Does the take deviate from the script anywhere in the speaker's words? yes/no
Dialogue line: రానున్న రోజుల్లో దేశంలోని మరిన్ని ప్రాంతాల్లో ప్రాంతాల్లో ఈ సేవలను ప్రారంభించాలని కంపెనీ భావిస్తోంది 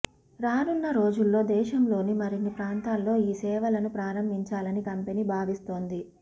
yes